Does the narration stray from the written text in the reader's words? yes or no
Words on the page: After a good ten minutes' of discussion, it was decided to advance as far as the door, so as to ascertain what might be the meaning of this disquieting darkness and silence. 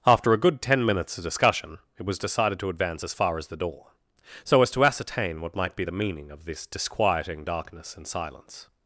no